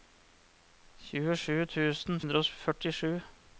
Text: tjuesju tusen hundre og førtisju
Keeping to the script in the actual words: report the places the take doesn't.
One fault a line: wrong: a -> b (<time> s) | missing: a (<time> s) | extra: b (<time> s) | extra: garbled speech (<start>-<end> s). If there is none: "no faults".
no faults